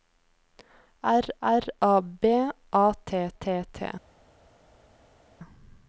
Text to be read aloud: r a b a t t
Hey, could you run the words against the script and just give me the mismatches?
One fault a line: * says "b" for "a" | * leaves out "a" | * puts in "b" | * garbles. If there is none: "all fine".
* puts in "r"
* puts in "t"